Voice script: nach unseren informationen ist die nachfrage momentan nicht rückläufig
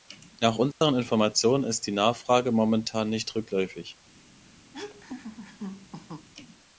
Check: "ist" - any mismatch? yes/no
no